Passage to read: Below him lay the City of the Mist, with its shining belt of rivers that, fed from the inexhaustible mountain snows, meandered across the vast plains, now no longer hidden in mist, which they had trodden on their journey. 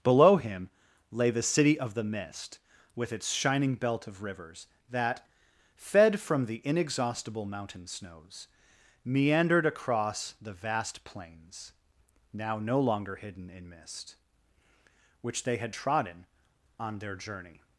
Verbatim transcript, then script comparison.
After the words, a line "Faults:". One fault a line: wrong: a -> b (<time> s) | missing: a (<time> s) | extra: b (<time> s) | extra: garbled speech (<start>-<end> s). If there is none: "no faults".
Below him lay the City of the Mist, with its shining belt of rivers that, fed from the inexhaustible mountain snows, meandered across the vast plains, now no longer hidden in mist, which they had trodden on their journey.
Faults:
no faults